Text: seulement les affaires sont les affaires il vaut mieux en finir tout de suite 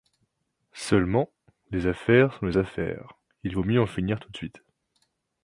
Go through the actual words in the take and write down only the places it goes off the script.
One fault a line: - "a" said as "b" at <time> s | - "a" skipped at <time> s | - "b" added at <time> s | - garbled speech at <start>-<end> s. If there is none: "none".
none